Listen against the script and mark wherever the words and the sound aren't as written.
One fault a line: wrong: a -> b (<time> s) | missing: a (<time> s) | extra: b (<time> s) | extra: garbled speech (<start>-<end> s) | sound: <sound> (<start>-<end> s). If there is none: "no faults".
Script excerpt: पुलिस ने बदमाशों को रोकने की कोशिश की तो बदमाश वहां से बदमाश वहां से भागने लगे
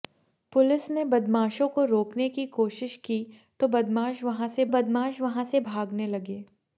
no faults